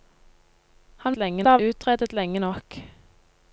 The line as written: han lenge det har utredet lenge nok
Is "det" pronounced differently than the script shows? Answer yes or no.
no